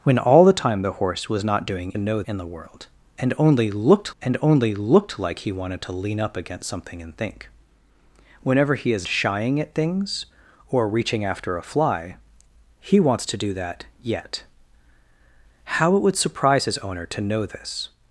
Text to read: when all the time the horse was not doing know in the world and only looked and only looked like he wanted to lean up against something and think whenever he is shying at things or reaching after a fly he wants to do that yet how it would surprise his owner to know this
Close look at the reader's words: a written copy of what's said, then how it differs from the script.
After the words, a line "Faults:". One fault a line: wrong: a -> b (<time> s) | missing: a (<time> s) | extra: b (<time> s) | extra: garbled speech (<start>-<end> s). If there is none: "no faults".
when all the time the horse was not doing know in the world and only looked and only looked like he wanted to lean up against something and think whenever he is shying at things or reaching after a fly he wants to do that yet how it would surprise his owner to know this
Faults:
no faults